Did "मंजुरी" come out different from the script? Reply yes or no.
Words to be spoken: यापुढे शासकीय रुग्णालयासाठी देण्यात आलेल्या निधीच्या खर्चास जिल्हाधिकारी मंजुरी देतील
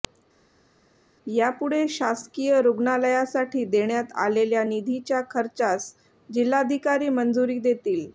no